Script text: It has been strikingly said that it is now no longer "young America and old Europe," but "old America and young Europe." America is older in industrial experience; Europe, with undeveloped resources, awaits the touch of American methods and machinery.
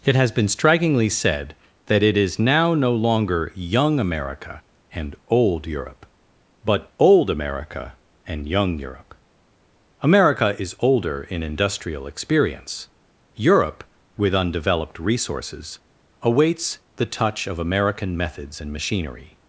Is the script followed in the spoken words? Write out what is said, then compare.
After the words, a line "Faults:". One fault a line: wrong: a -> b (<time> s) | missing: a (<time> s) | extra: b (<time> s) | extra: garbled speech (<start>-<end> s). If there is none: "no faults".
It has been strikingly said that it is now no longer "young America and old Europe," but "old America and young Europe." America is older in industrial experience; Europe, with undeveloped resources, awaits the touch of American methods and machinery.
Faults:
no faults